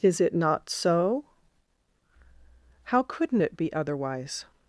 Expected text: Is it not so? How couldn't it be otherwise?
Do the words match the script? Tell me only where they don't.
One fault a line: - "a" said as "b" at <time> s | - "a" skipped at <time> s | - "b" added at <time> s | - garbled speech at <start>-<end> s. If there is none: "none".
none